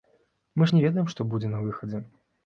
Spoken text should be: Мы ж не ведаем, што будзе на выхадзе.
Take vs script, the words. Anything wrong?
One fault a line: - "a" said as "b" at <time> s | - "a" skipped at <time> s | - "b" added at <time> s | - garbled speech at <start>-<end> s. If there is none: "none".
none